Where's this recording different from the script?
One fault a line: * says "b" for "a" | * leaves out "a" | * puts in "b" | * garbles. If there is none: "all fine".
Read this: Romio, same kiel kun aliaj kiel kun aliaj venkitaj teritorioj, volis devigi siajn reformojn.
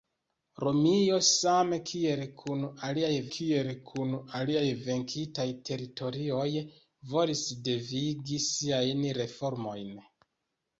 all fine